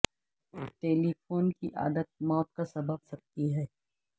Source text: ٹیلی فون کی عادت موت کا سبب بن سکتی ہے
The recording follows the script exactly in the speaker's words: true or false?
false